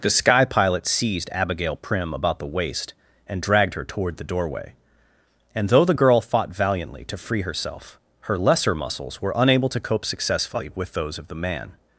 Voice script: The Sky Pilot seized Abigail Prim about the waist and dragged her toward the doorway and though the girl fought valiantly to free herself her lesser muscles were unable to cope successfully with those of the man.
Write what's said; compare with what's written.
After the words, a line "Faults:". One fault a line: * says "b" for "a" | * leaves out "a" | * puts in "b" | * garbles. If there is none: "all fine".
The Sky Pilot seized Abigail Prim about the waist and dragged her toward the doorway and though the girl fought valiantly to free herself her lesser muscles were unable to cope successfully with those of the man.
Faults:
all fine